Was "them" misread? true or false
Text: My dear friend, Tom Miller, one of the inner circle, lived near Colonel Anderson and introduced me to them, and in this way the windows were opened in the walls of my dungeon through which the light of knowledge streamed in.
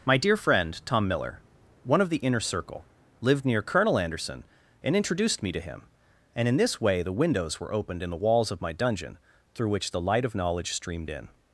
true